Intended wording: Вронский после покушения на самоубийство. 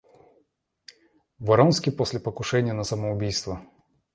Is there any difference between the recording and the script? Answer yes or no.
no